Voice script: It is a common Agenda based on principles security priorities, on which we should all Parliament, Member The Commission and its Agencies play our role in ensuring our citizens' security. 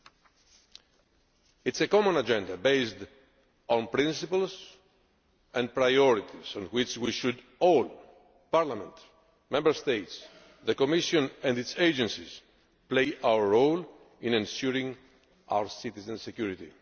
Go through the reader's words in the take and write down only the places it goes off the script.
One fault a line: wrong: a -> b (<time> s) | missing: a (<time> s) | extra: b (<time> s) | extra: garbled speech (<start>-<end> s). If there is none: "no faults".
wrong: security -> and (5.5 s)
extra: States (9.7 s)